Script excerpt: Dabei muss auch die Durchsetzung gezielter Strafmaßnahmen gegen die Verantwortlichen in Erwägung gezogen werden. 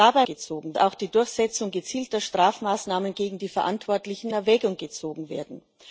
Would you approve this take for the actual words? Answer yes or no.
no